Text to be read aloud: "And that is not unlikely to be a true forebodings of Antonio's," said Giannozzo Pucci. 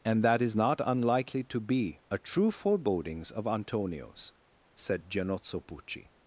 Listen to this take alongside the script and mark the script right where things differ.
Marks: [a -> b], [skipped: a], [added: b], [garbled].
"And that is not unlikely to be a true forebodings of Antonio's," said Giannozzo Pucci.